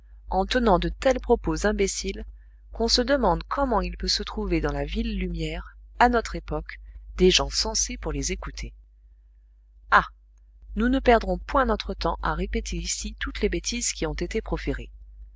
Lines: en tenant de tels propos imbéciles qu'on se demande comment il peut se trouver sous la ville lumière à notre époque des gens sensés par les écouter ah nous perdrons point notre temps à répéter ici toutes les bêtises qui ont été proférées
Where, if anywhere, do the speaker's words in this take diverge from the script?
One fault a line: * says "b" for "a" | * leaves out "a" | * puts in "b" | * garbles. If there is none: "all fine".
* says "dans" for "sous"
* says "pour" for "par"
* puts in "ne"